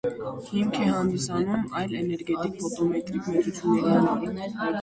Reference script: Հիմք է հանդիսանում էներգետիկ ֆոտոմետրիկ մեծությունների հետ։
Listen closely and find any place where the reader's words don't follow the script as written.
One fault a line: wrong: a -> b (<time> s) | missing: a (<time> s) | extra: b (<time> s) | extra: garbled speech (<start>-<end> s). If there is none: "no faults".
extra: այլ (1.8 s)
wrong: հետ -> համար (4.0 s)